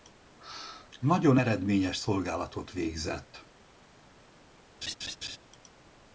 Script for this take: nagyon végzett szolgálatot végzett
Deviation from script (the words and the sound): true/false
true